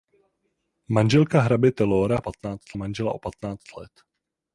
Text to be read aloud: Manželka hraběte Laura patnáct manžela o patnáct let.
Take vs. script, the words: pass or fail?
pass